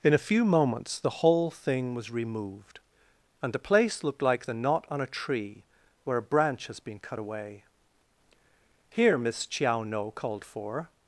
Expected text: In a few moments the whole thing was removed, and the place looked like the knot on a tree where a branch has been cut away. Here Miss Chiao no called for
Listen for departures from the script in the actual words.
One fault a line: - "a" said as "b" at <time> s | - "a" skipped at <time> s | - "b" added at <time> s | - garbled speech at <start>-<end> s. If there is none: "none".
none